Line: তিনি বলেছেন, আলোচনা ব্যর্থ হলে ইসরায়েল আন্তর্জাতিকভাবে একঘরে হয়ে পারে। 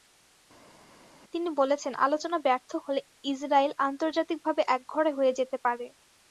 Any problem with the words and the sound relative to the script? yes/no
yes